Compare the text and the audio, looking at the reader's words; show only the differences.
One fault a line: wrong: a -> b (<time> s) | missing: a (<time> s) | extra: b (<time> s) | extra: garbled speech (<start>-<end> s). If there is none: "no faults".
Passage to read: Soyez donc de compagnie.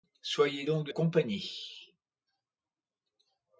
no faults